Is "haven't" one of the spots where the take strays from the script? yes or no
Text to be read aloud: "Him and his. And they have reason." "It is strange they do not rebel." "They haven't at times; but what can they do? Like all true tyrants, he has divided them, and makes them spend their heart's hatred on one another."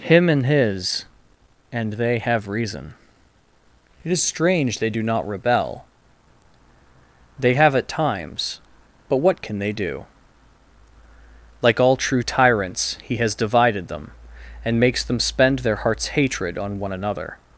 yes